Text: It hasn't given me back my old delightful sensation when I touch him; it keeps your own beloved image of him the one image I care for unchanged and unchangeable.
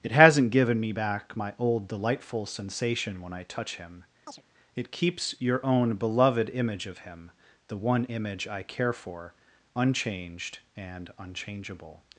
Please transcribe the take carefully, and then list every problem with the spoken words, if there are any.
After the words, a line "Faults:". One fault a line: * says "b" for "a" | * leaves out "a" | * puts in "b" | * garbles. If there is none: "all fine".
It hasn't given me back my old delightful sensation when I touch him; it keeps your own beloved image of him the one image I care for unchanged and unchangeable.
Faults:
all fine